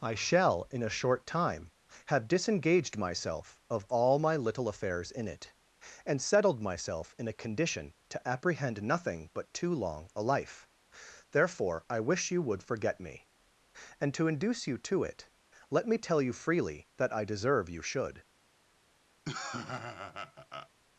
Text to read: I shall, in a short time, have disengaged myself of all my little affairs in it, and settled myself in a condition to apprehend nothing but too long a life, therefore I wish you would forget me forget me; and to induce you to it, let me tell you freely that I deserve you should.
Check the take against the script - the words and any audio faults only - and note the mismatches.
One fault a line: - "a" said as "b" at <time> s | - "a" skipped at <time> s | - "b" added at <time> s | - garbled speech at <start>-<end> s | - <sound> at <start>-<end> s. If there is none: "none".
- "forget me" skipped at 13.3 s
- laugh at 19.2-20.7 s